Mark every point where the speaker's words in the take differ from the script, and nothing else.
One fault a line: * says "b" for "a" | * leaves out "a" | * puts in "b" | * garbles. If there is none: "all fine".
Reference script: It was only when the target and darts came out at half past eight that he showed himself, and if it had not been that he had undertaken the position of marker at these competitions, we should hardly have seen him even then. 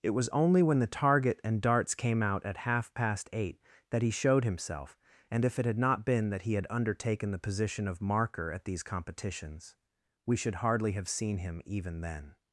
all fine